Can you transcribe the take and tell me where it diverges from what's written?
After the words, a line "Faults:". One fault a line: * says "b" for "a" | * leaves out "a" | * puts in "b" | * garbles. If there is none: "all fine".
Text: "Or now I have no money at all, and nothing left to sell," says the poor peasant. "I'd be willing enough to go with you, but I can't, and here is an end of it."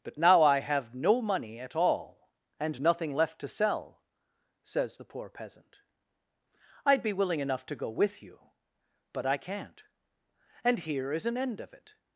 "But now I have no money at all, and nothing left to sell," says the poor peasant. "I'd be willing enough to go with you, but I can't, and here is an end of it."
Faults:
* says "But" for "Or"